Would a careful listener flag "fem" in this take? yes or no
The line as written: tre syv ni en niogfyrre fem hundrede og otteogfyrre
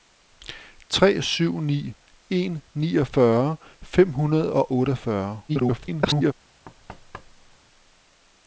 no